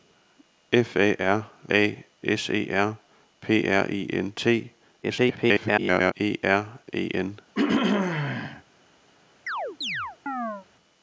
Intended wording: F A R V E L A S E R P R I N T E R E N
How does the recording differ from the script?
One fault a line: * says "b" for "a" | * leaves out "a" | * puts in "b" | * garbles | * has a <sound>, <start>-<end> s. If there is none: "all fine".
* leaves out "V E L"
* garbles
* has a throat clearing, 7.5-8.6 s
* has a chirp, 9.5-10.7 s